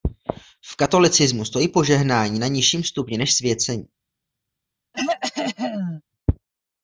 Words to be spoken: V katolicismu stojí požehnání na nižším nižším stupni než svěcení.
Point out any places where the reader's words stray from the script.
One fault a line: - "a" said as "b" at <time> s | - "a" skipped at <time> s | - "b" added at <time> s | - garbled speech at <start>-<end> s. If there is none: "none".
- "nižším" skipped at 2.8 s